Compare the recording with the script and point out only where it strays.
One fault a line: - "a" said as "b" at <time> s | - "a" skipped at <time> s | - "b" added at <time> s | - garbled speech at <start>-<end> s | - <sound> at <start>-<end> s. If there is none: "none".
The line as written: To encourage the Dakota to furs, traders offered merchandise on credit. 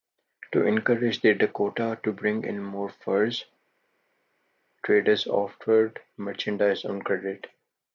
- "bring in more" added at 2.1 s